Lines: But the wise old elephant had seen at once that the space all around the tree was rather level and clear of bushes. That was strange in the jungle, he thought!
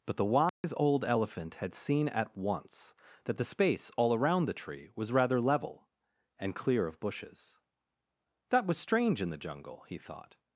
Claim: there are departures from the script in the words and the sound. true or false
true